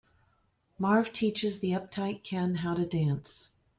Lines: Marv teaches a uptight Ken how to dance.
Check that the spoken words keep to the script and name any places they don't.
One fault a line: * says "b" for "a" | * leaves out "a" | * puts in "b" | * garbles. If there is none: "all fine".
* says "the" for "a"